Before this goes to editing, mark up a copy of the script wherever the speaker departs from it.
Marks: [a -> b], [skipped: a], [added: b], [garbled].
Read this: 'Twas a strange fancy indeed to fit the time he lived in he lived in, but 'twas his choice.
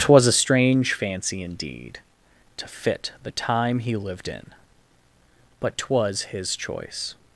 'Twas a strange fancy indeed to fit the time he lived in [skipped: he lived in,] but 'twas his choice.